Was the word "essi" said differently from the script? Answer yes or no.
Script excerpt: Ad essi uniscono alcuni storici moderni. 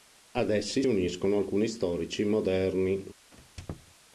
no